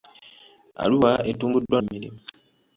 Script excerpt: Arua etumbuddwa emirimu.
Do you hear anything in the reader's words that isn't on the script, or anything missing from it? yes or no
no